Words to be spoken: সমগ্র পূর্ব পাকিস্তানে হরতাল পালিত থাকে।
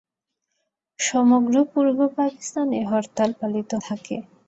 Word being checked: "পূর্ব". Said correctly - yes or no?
yes